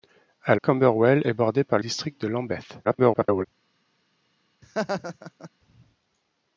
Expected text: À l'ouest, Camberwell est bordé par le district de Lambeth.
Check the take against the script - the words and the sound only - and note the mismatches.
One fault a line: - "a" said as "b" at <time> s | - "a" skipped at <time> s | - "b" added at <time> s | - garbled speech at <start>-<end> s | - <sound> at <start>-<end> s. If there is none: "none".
- "l'ouest" skipped at 0.6 s
- "le" skipped at 1.8 s
- garbled speech at 2.8-3.5 s
- laugh at 4.6-5.5 s